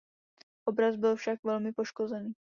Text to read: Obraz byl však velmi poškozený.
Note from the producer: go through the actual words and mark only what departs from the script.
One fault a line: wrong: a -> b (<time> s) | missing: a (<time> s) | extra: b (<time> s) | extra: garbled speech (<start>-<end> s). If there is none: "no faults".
no faults